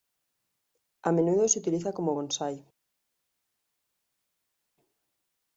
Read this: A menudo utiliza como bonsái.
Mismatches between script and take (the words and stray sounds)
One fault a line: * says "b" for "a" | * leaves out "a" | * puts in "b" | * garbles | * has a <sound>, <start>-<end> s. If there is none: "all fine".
* puts in "se"